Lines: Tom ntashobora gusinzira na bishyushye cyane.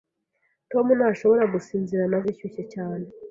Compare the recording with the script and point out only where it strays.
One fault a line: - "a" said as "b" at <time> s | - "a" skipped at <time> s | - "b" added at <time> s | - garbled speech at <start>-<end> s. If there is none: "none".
none